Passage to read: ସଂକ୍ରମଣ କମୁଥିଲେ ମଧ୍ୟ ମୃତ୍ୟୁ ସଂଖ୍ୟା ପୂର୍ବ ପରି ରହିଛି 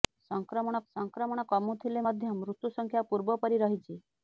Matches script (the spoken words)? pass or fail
fail